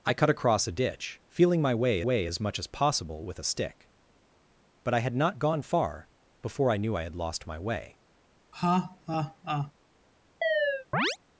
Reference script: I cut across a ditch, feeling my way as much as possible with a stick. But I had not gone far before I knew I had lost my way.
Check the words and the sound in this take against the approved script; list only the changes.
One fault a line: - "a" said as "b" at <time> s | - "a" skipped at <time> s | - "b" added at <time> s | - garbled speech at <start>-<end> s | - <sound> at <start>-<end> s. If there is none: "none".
- "way" added at 2.0 s
- laugh at 8.5-9.7 s
- chirp at 10.4-11.2 s